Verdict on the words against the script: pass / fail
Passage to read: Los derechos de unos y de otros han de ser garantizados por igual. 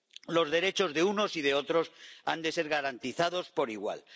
pass